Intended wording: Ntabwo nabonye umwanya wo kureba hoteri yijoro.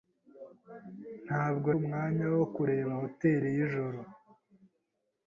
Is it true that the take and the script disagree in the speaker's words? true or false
true